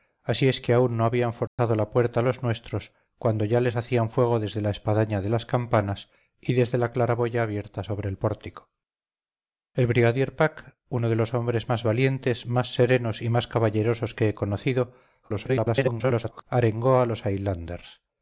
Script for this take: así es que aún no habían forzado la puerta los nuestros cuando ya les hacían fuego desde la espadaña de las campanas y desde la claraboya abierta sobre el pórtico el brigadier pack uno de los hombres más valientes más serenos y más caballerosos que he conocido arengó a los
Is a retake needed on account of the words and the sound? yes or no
yes